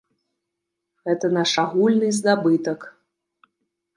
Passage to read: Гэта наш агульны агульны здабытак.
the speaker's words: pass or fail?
fail